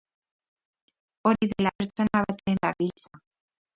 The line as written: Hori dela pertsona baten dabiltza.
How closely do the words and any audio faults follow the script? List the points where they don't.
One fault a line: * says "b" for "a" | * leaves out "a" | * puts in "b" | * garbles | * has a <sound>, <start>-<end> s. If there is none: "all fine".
all fine